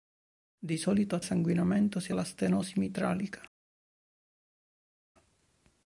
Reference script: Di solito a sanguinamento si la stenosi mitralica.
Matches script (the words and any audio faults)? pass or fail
pass